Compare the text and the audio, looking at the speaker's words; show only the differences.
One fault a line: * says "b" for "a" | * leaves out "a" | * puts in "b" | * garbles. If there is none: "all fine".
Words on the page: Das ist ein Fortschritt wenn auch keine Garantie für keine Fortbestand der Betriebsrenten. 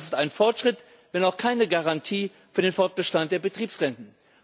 * says "den" for "keine"